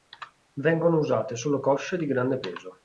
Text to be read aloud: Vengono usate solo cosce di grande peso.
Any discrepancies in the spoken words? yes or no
no